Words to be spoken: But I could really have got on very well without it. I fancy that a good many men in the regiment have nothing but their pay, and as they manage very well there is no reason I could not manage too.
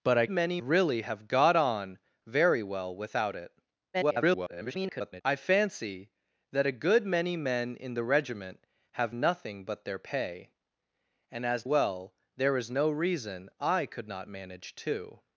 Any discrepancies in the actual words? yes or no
yes